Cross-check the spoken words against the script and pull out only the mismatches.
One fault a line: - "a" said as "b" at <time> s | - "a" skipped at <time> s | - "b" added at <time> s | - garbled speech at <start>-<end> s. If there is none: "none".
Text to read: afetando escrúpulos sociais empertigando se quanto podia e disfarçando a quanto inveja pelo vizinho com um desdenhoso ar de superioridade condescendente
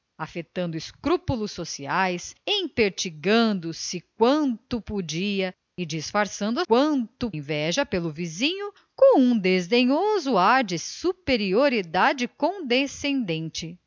none